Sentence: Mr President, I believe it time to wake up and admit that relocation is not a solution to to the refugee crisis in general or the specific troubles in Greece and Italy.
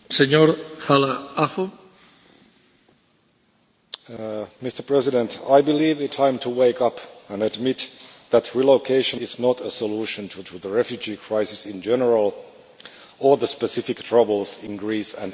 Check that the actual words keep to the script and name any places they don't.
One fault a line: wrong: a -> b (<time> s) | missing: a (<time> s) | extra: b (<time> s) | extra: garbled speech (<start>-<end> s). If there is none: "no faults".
no faults